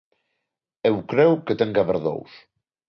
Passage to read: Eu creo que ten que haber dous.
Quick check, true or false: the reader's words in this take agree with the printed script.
true